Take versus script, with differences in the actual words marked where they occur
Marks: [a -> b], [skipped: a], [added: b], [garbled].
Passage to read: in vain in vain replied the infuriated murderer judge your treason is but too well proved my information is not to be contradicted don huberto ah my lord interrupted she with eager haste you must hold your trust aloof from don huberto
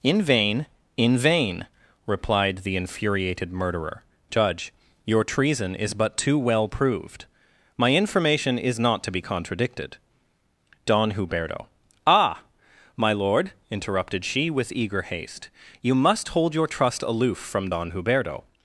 in vain in vain replied the infuriated murderer judge your treason is but too well proved my information is not to be contradicted don huberto ah my lord interrupted she with eager haste you must hold your trust aloof from don huberto